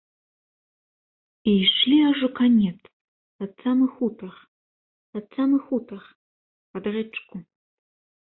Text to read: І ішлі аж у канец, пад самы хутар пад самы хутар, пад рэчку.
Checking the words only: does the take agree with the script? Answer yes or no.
yes